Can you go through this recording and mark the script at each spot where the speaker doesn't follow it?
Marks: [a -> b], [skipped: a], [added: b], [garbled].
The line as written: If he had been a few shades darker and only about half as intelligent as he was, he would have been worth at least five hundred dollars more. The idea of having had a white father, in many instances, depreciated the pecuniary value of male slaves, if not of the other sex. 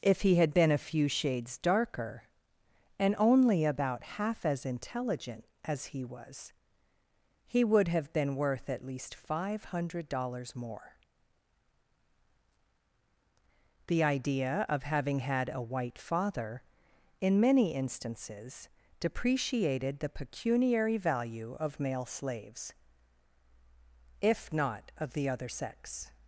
If he had been a few shades darker and only about half as intelligent as he was, he would have been worth at least five hundred dollars more. The idea of having had a white father, in many instances, depreciated the pecuniary value of male slaves, if not of the other sex.